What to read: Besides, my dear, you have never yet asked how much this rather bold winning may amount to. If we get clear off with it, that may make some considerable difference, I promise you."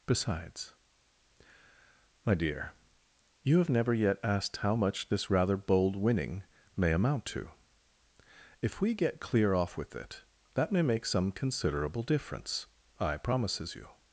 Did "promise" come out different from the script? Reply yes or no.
yes